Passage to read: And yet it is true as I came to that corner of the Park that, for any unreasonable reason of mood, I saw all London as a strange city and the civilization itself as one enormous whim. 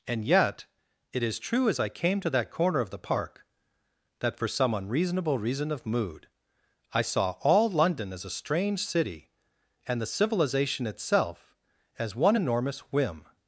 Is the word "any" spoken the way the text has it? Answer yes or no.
no